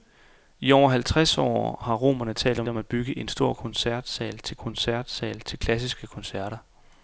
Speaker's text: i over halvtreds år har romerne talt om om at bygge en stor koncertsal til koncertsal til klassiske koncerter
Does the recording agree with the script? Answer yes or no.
yes